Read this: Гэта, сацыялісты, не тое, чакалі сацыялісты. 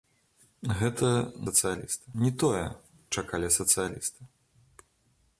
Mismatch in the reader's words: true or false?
false